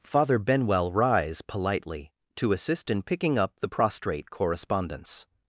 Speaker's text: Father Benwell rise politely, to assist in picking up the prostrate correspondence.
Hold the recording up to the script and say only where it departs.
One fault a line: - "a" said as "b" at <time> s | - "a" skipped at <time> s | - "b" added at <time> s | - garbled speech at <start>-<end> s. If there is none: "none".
none